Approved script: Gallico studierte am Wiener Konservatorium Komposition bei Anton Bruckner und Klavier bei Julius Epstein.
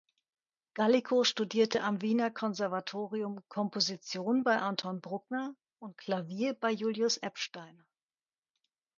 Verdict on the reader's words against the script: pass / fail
pass